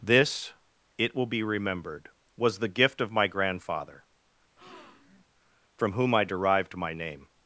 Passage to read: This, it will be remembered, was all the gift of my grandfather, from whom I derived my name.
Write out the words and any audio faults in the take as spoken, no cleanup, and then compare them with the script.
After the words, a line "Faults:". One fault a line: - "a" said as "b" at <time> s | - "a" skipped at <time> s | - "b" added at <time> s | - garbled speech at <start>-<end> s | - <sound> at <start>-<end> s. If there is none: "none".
This, it will be remembered, was the gift of my grandfather, from whom I derived my name.
Faults:
- "all" skipped at 2.6 s
- breath at 4.6-5.2 s